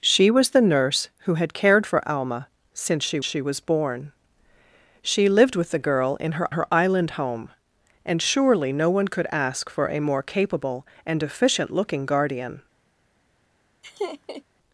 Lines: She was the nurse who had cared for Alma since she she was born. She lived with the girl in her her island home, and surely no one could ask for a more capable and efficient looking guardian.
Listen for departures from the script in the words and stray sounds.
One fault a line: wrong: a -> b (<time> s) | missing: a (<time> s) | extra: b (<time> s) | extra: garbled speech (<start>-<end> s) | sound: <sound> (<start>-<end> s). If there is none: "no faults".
sound: laugh (13.8-14.4 s)